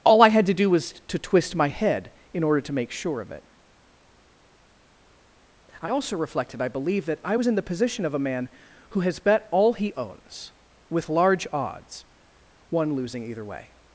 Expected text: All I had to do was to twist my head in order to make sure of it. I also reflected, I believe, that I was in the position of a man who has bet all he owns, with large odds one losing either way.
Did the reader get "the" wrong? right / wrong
right